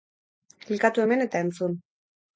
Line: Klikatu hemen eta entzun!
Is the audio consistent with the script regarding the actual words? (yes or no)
yes